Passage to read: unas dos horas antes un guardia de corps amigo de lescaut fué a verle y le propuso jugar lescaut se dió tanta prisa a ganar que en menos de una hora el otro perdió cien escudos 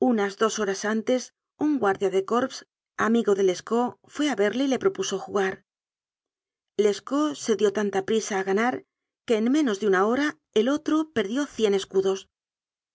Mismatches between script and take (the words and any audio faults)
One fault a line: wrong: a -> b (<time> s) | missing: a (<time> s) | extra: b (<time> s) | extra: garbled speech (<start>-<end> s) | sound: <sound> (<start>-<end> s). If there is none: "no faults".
no faults